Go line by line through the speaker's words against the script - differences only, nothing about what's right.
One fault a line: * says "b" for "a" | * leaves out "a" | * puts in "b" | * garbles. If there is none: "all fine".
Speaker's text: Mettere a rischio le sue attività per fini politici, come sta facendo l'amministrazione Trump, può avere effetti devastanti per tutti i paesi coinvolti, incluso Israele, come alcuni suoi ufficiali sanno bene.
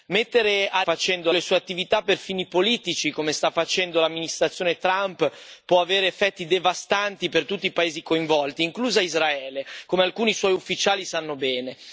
* says "facendo" for "rischio"